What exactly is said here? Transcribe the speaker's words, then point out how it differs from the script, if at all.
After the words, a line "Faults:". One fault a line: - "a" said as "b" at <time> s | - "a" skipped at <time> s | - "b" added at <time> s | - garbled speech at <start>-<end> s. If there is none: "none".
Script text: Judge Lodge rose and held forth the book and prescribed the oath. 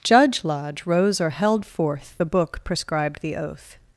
Judge Lodge rose or held forth the book prescribed the oath.
Faults:
- "and" said as "or" at 1.2 s
- "and" skipped at 2.6 s